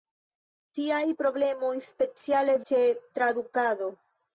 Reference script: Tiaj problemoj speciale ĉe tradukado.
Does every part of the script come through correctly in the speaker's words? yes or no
yes